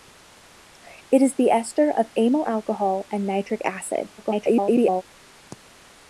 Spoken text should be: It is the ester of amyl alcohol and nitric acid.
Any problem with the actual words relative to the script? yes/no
yes